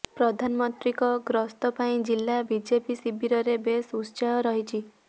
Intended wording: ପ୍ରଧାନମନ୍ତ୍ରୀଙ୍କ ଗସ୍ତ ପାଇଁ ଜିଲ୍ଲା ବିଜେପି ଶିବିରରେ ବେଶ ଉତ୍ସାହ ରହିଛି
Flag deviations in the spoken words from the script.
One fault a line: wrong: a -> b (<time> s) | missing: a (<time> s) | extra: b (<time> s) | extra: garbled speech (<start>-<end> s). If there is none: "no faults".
no faults